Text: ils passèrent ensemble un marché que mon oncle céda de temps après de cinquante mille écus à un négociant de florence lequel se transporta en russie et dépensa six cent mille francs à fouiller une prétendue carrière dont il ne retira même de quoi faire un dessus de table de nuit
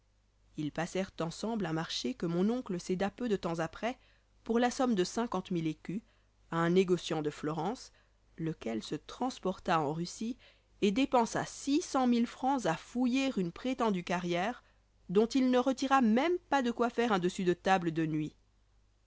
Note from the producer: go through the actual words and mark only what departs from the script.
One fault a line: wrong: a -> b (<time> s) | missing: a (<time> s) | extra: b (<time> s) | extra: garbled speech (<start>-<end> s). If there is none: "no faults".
extra: peu (3.1 s)
extra: pour la somme (4.5 s)
extra: pas (16.5 s)